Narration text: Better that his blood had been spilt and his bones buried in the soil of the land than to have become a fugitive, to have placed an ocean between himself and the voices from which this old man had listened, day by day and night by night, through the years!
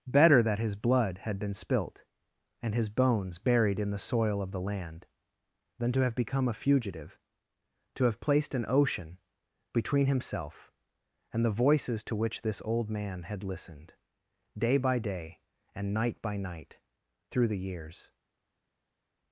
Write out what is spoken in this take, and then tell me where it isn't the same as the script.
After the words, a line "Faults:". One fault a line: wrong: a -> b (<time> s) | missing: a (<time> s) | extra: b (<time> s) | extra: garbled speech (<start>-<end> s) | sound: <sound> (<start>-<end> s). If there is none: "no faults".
Better that his blood had been spilt and his bones buried in the soil of the land than to have become a fugitive, to have placed an ocean between himself and the voices to which this old man had listened, day by day and night by night, through the years!
Faults:
wrong: from -> to (12.0 s)